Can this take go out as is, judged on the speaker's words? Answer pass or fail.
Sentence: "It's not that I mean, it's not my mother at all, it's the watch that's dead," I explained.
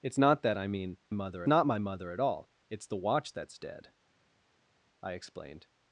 fail